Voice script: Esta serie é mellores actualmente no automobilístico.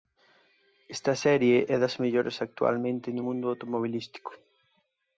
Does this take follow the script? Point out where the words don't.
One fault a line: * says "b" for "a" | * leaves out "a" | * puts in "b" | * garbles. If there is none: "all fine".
* puts in "das"
* puts in "mundo"